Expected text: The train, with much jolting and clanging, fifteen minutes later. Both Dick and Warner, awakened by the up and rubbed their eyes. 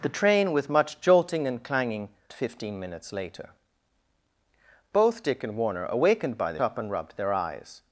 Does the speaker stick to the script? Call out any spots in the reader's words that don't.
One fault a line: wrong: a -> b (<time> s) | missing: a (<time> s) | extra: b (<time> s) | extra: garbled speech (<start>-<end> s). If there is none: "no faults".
no faults